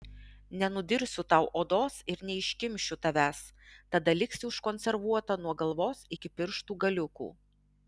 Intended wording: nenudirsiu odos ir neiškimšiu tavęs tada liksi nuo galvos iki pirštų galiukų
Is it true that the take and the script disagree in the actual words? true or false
true